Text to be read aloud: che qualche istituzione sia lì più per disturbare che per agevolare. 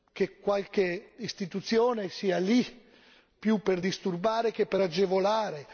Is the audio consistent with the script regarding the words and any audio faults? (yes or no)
yes